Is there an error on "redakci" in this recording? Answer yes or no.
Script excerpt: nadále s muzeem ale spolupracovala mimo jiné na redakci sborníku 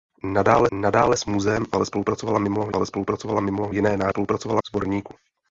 yes